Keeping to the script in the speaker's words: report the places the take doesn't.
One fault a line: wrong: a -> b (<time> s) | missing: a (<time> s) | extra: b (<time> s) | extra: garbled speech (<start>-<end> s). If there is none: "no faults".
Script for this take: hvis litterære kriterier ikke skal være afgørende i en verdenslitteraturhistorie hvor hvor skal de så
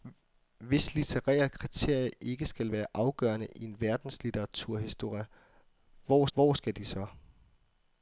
no faults